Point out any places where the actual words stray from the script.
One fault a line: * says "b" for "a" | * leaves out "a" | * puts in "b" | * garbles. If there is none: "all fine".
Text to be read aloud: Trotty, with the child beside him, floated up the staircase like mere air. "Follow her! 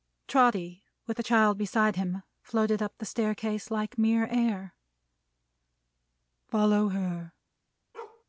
all fine